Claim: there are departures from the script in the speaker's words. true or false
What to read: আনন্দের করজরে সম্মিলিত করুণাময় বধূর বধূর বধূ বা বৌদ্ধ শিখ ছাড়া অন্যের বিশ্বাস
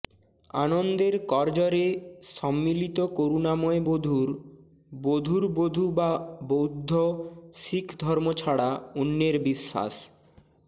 true